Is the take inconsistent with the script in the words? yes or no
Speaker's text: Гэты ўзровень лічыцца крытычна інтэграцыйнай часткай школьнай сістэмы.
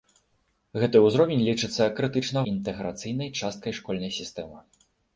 no